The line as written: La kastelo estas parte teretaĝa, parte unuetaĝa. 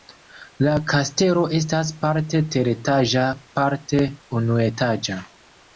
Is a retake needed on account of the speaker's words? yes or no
no